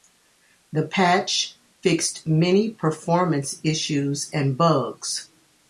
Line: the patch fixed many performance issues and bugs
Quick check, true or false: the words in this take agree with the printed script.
true